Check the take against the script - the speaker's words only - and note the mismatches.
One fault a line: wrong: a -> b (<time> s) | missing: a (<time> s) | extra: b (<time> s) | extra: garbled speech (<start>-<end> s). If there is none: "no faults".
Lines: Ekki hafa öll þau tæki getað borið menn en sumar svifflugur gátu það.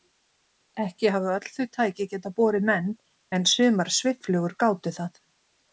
no faults